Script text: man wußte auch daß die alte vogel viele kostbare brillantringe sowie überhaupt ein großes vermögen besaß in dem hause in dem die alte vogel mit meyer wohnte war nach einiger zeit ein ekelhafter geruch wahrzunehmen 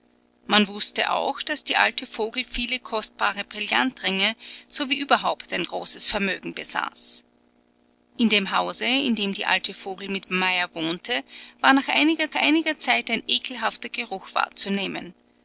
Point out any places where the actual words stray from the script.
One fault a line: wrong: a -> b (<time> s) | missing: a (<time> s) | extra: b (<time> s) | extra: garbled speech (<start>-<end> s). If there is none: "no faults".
extra: einiger (12.3 s)